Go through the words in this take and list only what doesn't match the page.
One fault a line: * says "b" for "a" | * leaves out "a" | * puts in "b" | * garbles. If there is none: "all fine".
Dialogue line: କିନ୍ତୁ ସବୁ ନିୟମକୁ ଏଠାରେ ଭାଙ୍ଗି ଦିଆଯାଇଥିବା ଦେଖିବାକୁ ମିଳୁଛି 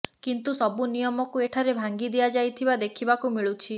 all fine